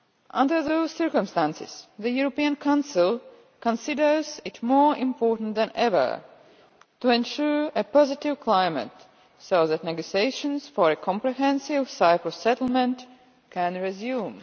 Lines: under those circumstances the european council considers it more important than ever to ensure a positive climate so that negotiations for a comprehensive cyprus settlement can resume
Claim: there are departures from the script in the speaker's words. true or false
false